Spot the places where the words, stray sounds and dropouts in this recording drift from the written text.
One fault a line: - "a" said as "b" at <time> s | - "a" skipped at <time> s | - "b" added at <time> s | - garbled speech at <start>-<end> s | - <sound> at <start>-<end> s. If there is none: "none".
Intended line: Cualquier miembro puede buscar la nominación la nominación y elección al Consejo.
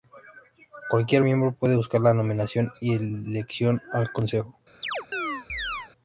- "la nominación" skipped at 2.7 s
- chirp at 4.8-5.9 s